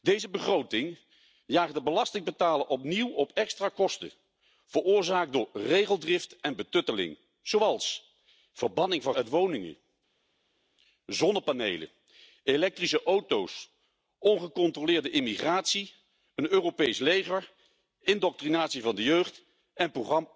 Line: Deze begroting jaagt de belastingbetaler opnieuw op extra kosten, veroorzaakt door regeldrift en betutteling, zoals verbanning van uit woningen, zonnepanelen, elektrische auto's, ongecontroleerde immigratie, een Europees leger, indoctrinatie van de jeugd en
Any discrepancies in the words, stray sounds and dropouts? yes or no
no